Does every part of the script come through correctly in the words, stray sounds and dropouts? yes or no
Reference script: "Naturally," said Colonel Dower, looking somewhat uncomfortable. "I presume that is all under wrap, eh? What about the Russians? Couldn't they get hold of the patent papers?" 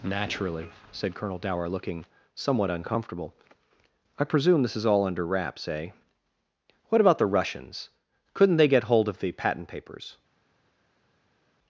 no